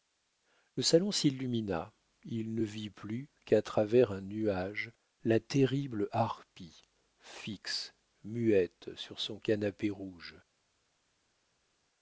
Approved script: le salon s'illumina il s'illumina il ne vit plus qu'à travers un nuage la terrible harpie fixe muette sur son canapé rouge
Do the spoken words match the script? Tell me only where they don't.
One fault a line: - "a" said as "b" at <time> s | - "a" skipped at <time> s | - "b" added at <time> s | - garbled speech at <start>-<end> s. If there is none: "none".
- "s'illumina il" skipped at 2.5 s